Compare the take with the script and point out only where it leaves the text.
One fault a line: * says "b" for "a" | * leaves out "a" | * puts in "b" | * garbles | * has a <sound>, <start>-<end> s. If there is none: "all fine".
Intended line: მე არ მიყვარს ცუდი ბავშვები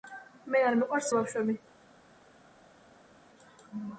* leaves out "ცუდი"